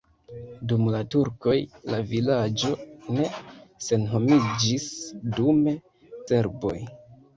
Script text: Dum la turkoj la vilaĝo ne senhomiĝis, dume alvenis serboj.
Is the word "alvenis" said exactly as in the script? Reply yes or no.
no